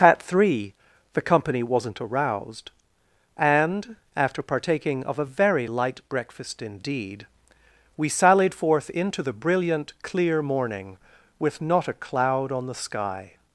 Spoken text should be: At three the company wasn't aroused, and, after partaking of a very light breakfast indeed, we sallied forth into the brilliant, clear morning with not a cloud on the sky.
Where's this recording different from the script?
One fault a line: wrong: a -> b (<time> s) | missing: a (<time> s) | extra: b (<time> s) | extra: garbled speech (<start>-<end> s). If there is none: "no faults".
no faults